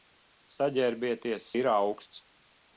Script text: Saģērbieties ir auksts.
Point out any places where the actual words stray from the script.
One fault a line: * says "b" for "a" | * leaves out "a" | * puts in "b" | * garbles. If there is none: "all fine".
all fine